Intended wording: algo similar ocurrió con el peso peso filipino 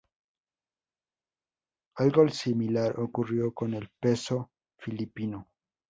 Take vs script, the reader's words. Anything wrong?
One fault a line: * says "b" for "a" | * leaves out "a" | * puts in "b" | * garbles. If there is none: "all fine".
* leaves out "peso"